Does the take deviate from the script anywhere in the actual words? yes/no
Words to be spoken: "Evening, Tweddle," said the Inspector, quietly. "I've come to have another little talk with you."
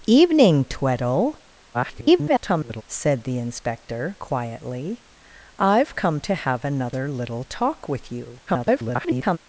yes